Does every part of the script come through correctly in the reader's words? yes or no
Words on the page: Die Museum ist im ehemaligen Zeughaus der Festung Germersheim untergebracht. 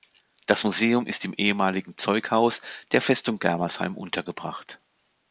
no